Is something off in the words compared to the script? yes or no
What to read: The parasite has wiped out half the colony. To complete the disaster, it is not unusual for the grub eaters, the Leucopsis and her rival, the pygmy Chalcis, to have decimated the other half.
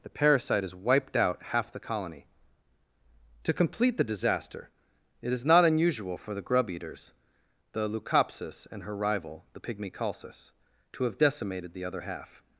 no